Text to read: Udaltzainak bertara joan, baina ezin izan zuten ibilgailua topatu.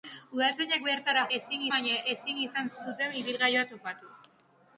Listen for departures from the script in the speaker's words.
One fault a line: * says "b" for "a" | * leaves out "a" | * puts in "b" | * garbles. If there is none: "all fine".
* says "ezin" for "joan"